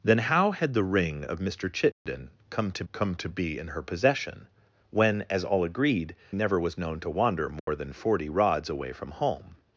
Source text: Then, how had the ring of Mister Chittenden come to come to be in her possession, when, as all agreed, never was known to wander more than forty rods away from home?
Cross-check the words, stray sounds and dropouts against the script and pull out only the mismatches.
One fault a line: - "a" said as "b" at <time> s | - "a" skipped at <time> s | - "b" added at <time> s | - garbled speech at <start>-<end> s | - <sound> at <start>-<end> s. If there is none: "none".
- dropout at 1.9-2.1 s
- dropout at 7.6-7.7 s